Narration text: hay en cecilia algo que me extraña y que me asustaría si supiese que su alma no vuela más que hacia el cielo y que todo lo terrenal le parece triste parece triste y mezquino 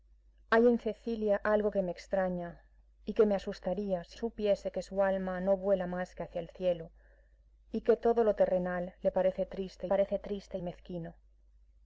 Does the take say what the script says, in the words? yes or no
yes